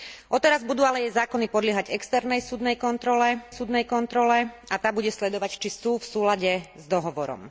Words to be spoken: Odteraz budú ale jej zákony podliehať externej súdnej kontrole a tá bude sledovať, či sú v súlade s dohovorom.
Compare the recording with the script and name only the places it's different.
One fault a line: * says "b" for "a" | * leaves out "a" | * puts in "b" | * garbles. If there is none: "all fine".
* puts in "súdnej kontrole"